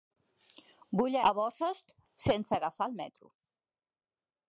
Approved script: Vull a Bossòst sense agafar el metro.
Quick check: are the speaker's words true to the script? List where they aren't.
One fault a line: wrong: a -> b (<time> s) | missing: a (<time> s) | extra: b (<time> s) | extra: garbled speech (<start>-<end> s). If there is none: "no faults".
no faults